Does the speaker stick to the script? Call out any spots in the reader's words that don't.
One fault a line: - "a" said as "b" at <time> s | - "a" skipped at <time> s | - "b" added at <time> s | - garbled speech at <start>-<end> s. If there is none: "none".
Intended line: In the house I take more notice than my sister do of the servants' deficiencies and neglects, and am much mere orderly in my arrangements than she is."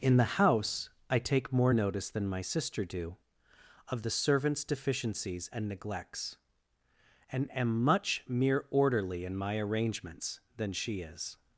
none